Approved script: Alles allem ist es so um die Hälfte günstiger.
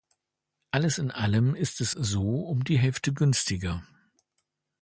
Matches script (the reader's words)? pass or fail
fail